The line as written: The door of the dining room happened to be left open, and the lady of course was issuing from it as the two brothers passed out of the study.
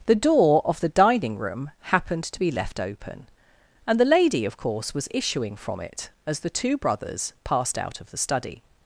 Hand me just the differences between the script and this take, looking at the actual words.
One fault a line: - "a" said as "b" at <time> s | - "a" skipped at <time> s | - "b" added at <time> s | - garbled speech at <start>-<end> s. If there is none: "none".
none